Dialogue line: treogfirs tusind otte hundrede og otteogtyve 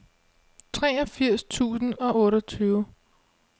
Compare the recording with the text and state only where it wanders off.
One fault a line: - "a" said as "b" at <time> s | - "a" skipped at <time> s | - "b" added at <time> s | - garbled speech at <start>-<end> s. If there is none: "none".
- "otte hundrede" skipped at 1.9 s